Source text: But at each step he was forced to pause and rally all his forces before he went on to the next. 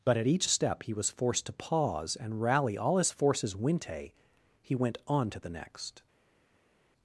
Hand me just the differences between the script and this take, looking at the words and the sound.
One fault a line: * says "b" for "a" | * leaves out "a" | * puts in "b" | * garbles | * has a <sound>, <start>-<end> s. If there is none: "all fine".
* says "winte" for "before"